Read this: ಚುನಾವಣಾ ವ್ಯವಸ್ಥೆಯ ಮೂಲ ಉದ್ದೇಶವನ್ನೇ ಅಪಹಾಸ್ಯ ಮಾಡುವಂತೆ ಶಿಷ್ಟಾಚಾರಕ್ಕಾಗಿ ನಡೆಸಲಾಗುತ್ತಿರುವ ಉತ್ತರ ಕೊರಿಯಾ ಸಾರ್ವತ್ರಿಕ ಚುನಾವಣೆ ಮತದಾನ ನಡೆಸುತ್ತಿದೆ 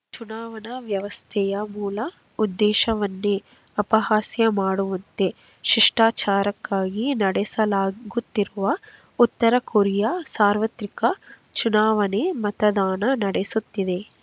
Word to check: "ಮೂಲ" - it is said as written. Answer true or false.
true